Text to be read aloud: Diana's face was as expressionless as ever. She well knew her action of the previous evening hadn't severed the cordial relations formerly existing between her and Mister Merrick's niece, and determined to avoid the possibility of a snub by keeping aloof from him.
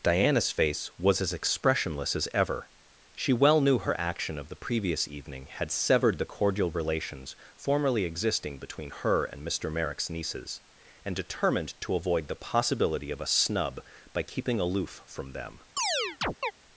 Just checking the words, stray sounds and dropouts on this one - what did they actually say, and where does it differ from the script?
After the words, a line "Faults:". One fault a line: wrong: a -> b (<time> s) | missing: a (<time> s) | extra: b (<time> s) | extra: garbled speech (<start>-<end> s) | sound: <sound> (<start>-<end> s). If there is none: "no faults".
Diana's face was as expressionless as ever. She well knew her action of the previous evening had severed the cordial relations formerly existing between her and Mister Merrick's nieces, and determined to avoid the possibility of a snub by keeping aloof from them.
Faults:
wrong: hadn't -> had (5.5 s)
wrong: niece -> nieces (10.1 s)
wrong: him -> them (15.3 s)
sound: chirp (15.8-16.5 s)